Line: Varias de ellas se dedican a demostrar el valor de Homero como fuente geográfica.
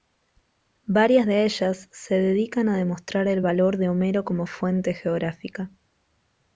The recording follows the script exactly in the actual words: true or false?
true